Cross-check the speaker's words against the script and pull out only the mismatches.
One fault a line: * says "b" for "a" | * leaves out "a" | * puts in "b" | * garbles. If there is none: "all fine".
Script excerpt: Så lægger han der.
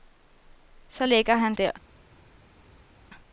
all fine